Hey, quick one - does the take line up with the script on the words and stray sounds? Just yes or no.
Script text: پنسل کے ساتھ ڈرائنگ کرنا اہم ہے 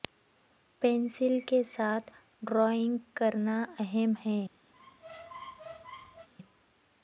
no